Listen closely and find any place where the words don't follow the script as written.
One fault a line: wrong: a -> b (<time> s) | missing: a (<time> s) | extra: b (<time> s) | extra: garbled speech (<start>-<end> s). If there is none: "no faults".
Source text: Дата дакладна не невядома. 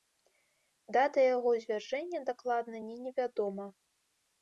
extra: яго звяржэння (1.4 s)